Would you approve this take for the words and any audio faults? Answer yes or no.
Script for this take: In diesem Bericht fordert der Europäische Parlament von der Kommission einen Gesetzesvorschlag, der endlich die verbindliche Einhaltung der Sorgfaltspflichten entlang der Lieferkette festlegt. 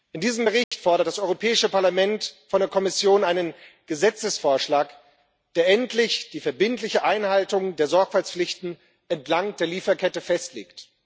no